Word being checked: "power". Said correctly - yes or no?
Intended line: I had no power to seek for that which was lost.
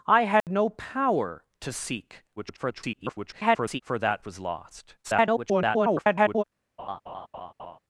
yes